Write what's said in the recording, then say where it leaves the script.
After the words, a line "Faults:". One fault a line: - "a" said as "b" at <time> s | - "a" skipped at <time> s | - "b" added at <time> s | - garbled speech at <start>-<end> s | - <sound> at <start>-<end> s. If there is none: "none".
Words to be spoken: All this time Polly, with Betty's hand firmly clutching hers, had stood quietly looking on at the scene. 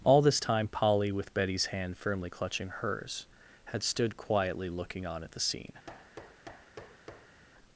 All this time Polly, with Betty's hand firmly clutching hers, had stood quietly looking on at the scene.
Faults:
- thud at 5.9-7.4 s